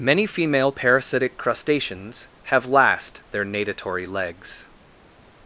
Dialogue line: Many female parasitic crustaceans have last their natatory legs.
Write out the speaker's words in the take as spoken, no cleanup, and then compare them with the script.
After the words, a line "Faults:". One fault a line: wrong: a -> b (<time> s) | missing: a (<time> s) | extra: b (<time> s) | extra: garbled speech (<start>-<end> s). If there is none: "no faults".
Many female parasitic crustaceans have last their natatory legs.
Faults:
no faults